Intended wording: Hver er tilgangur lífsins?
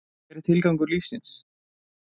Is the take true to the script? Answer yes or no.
yes